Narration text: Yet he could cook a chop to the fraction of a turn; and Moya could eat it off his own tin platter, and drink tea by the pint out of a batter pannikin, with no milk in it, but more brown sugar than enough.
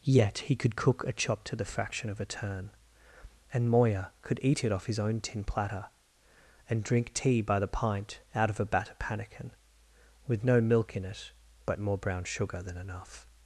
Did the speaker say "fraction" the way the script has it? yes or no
yes